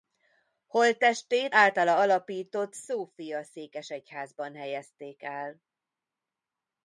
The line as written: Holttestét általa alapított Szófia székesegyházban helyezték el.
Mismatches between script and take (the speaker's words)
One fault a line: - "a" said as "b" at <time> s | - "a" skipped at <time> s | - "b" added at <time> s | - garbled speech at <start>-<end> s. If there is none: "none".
none